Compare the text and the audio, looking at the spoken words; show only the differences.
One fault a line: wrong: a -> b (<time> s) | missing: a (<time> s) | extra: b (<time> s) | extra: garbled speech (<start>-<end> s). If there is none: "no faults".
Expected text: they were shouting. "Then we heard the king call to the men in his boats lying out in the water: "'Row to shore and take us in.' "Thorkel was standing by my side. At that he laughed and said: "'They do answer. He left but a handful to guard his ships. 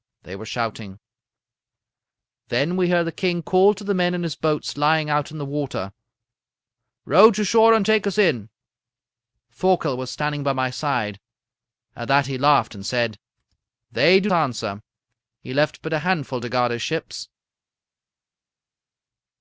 no faults